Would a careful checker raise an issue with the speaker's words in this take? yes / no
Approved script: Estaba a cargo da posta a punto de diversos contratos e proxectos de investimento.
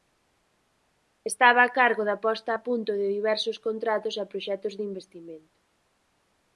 no